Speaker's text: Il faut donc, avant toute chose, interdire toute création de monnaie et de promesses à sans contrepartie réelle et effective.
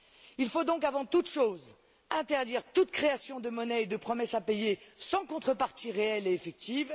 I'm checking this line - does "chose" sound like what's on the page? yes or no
yes